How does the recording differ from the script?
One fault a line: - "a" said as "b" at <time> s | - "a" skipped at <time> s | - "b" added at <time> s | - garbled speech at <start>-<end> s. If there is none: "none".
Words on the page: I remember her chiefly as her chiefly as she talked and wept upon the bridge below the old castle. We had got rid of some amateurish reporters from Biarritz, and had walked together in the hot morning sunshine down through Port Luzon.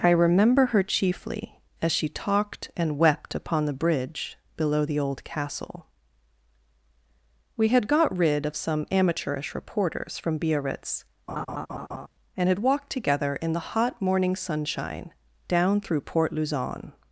- "her chiefly as" skipped at 1.9 s